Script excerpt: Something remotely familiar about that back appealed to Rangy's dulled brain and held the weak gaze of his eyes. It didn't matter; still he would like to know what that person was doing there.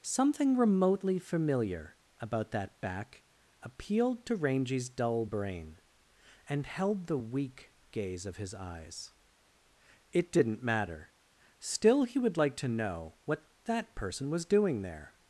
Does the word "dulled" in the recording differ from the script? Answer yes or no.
yes